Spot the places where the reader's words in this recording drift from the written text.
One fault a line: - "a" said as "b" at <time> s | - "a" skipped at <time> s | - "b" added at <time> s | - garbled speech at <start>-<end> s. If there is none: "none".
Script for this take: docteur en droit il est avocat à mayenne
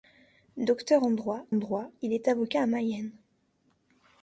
- "droit" added at 1.5 s